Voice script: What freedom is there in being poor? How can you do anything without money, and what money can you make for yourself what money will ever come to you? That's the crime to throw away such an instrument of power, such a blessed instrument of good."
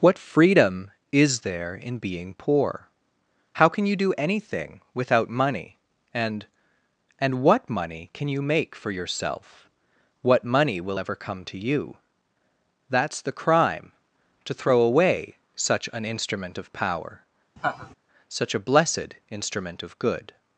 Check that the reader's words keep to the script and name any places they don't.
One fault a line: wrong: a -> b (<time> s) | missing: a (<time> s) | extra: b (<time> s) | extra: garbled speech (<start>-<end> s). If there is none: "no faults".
extra: and (7.2 s)